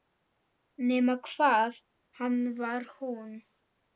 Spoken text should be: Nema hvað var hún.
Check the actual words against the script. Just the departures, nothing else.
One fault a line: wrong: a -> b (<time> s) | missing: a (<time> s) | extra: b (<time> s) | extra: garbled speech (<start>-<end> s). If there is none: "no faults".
extra: hann (2.2 s)